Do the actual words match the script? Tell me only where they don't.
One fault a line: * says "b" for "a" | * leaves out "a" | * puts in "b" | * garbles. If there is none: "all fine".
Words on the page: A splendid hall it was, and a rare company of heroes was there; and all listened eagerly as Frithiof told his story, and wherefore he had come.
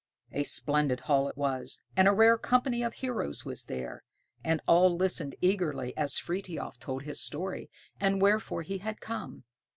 all fine